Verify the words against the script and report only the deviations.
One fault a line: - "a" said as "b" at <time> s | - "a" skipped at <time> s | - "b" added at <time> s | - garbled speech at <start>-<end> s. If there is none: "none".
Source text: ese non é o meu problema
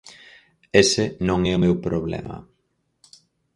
none